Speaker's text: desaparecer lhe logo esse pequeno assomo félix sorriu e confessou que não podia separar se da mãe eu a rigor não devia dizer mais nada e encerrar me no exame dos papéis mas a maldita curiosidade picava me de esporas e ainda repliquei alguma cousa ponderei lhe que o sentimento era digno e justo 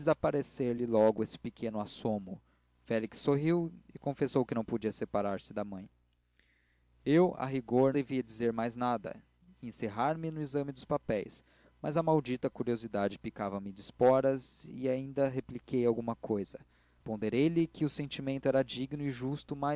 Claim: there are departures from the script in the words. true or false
true